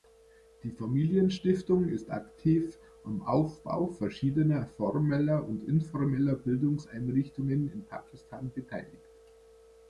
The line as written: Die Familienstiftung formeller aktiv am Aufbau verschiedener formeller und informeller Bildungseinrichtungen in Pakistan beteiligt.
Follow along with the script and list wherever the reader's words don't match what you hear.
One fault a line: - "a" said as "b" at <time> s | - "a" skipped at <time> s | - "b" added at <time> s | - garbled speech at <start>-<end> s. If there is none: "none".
- "formeller" said as "ist" at 1.9 s